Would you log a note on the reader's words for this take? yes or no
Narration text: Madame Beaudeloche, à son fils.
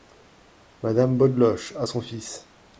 no